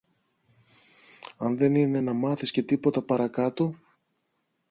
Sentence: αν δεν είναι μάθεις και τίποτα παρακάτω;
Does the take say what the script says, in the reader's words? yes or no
no